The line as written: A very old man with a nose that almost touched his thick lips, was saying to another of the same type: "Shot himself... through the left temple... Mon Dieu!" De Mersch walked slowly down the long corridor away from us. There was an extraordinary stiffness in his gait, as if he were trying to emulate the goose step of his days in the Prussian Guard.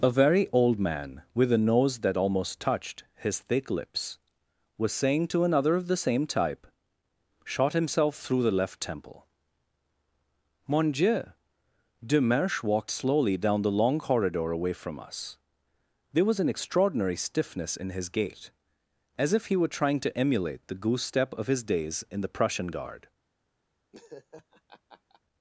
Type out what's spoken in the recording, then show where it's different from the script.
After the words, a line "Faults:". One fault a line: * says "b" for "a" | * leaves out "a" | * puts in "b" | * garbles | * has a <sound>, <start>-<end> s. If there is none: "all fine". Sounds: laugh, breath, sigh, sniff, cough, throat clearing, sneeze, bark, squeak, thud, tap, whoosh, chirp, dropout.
A very old man with a nose that almost touched his thick lips, was saying to another of the same type: "Shot himself... through the left temple... Mon Dieu!" De Mersch walked slowly down the long corridor away from us. There was an extraordinary stiffness in his gait, as if he were trying to emulate the goose step of his days in the Prussian Guard.
Faults:
* has a laugh, 23.9-25.2 s